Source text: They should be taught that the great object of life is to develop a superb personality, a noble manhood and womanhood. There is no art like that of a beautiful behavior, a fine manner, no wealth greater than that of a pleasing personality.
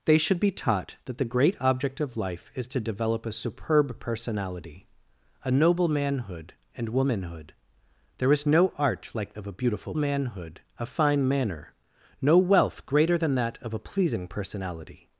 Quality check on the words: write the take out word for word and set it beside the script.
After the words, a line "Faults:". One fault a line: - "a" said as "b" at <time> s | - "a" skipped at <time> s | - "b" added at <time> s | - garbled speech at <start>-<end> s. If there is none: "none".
They should be taught that the great object of life is to develop a superb personality, a noble manhood and womanhood. There is no art like of a beautiful manhood, a fine manner, no wealth greater than that of a pleasing personality.
Faults:
- "that" skipped at 9.3 s
- "behavior" said as "manhood" at 9.9 s